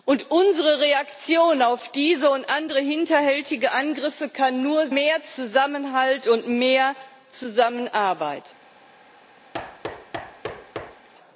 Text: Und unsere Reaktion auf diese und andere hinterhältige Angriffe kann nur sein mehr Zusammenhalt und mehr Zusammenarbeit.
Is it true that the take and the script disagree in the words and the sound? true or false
true